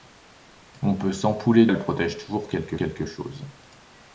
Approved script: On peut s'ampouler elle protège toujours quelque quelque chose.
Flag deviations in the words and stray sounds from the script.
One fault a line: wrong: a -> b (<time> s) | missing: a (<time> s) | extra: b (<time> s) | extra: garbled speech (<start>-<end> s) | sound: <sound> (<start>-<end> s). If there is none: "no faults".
no faults